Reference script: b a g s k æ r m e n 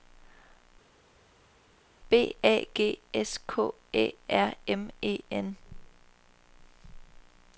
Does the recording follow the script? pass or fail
pass